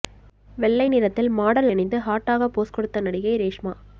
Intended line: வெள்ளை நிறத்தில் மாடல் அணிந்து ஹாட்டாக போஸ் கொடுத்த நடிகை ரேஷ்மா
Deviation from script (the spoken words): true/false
false